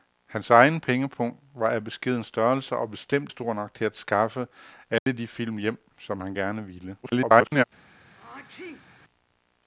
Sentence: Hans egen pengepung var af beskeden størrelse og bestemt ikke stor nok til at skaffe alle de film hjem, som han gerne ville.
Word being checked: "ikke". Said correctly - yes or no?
no